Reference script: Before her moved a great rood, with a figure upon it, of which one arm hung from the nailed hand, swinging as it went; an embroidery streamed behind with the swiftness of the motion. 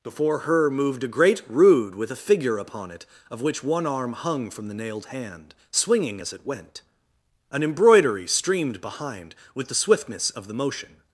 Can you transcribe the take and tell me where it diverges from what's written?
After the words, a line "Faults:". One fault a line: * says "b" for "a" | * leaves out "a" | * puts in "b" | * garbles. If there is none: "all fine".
Before her moved a great rood, with a figure upon it, of which one arm hung from the nailed hand, swinging as it went; an embroidery streamed behind with the swiftness of the motion.
Faults:
all fine